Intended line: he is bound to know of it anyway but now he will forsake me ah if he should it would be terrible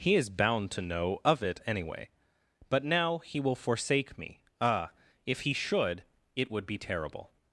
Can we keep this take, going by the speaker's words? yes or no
yes